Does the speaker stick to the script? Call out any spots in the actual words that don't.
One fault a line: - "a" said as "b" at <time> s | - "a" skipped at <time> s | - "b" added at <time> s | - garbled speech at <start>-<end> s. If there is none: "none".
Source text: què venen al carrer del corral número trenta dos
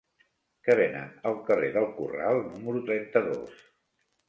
none